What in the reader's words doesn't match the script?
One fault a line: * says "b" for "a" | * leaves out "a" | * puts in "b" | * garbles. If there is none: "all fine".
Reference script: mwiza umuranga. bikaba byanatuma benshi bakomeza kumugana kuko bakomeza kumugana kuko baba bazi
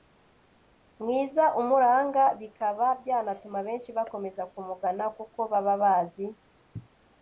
* leaves out "bakomeza kumugana kuko"